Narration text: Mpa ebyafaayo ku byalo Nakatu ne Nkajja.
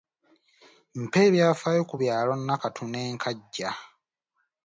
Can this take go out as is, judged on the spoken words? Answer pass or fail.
pass